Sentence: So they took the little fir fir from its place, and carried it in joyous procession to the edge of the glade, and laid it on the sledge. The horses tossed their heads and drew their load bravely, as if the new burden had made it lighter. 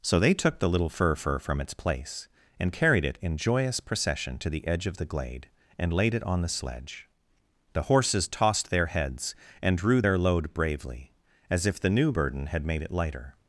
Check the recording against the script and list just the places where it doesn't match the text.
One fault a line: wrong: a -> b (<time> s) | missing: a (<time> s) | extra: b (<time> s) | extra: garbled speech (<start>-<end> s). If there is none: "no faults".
no faults